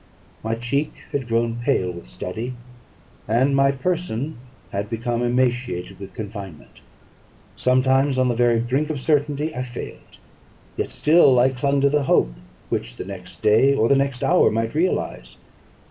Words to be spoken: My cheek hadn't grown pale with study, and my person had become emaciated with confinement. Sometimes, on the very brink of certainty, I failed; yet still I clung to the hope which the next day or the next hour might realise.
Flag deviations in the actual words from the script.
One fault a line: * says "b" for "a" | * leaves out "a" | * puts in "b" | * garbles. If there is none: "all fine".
* says "had" for "hadn't"